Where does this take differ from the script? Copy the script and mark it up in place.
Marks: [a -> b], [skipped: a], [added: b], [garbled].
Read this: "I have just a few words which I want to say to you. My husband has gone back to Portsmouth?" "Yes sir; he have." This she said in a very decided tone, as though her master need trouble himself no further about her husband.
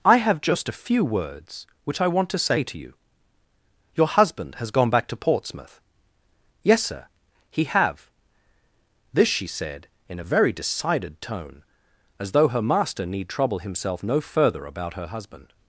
"I have just a few words which I want to say to you. [My -> Your] husband has gone back to Portsmouth?" "Yes sir; he have." This she said in a very decided tone, as though her master need trouble himself no further about her husband.